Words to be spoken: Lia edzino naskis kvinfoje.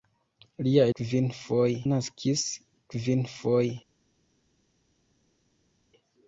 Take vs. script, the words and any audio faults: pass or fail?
fail